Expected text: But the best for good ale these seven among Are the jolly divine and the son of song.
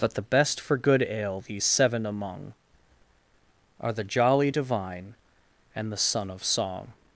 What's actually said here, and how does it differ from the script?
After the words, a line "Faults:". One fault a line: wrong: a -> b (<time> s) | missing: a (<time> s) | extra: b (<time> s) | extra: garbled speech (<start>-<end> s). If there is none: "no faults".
But the best for good ale these seven among Are the jolly divine and the son of song.
Faults:
no faults